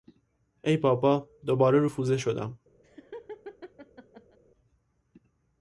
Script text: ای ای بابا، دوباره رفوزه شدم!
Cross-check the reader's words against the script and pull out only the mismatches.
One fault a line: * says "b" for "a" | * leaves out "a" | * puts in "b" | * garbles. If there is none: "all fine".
* leaves out "ای"